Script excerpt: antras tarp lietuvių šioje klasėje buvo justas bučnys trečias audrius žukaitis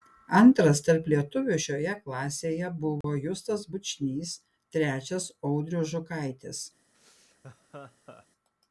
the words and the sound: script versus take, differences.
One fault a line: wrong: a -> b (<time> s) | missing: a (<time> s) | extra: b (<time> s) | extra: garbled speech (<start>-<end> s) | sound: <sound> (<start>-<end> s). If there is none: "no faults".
sound: dropout (3.0-3.0 s)
sound: laugh (6.9-8.3 s)